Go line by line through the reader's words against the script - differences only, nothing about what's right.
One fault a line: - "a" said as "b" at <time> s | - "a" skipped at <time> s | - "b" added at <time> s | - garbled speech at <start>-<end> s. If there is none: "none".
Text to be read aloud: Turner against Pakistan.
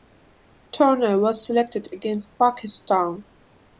- "was selected" added at 1.2 s